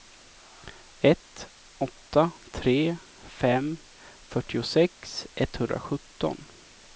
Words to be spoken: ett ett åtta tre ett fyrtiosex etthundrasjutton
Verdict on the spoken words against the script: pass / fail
fail